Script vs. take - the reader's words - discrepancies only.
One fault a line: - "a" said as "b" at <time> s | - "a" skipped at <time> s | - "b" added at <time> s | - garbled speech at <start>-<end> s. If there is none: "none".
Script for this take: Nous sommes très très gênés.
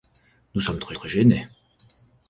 none